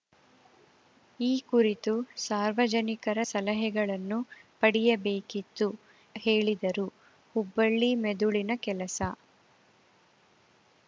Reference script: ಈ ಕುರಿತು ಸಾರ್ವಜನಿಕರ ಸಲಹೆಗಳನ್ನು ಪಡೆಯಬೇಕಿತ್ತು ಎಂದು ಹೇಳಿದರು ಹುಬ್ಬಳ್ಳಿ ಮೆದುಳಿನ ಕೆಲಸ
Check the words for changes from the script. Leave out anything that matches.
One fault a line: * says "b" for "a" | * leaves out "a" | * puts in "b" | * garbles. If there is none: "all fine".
* leaves out "ಎಂದು"